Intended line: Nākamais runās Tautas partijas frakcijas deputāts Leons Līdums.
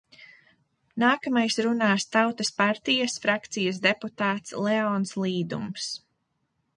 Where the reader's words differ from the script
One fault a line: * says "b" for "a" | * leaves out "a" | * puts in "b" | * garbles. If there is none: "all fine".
all fine